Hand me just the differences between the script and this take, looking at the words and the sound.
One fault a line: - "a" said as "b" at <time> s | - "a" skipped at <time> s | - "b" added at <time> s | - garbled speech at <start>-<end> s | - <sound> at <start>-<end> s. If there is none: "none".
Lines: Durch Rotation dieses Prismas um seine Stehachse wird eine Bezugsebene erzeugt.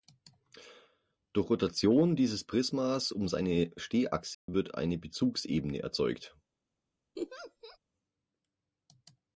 - dropout at 4.3-4.5 s
- laugh at 7.2-7.8 s